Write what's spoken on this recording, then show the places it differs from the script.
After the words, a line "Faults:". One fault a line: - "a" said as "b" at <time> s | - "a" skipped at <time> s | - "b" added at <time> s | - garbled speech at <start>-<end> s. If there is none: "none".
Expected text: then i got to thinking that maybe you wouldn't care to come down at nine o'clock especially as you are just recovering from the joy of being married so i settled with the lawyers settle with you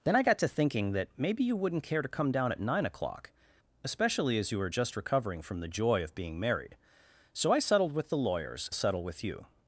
then i got to thinking that maybe you wouldn't care to come down at nine o'clock especially as you are just recovering from the joy of being married so i settled with the lawyers settle with you
Faults:
none